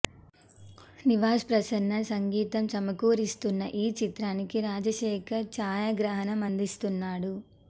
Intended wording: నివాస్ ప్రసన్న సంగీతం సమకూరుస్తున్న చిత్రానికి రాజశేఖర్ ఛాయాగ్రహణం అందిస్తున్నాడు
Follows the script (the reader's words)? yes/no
no